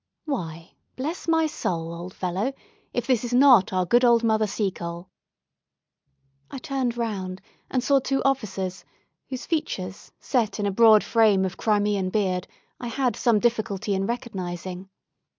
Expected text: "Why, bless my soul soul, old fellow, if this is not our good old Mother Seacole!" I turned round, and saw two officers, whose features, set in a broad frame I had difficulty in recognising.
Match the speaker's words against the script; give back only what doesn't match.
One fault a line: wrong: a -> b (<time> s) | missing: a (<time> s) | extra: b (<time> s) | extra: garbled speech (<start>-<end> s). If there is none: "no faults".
missing: soul (1.9 s)
extra: of Crimean beard (11.4 s)
extra: some (13.2 s)